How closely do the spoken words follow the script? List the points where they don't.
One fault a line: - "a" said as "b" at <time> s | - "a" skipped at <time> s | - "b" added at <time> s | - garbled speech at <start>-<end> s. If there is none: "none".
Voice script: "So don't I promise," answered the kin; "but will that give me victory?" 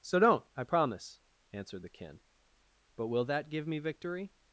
none